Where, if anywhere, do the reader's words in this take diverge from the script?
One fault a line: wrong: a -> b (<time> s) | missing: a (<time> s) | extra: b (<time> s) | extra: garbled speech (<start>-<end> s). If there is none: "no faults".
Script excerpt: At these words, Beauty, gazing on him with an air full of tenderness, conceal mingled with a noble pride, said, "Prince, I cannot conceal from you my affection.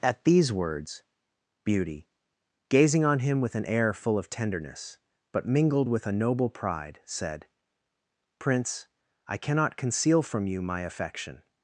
wrong: conceal -> but (5.3 s)